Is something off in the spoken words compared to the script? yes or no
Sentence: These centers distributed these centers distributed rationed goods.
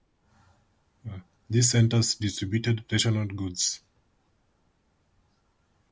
yes